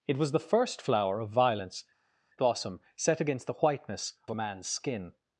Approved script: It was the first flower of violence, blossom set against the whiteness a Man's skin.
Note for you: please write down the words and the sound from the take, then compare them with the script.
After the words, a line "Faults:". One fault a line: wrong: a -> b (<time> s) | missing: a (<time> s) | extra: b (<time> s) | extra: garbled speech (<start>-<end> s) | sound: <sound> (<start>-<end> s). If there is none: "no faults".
It was the first flower of violence, blossom set against the whiteness a Man's skin.
Faults:
no faults